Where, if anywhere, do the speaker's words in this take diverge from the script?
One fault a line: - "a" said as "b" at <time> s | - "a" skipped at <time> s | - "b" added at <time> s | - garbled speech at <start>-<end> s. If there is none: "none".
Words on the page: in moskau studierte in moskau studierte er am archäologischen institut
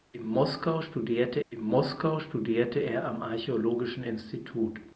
none